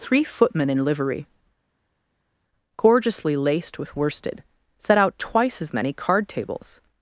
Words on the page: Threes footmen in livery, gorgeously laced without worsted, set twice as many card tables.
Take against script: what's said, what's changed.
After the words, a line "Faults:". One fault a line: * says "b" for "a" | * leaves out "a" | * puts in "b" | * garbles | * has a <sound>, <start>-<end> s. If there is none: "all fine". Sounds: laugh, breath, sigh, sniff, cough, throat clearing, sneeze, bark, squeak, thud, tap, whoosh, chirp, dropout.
Three footmen in livery, gorgeously laced with worsted, set out twice as many card tables.
Faults:
* says "Three" for "Threes"
* says "with" for "without"
* puts in "out"